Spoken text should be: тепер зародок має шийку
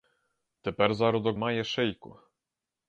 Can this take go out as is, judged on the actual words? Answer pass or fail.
pass